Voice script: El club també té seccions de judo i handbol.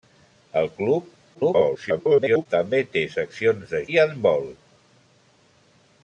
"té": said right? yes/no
yes